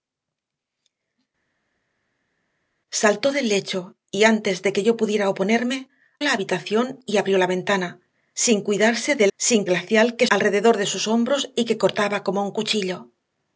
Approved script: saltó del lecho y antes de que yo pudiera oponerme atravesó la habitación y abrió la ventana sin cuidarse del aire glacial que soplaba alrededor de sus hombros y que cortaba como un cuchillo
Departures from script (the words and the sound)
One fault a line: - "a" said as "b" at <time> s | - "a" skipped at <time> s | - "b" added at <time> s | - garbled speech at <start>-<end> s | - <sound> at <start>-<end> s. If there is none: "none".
- "atravesó" skipped at 5.9 s
- "aire" said as "sin" at 9.4 s
- "soplaba" skipped at 10.3 s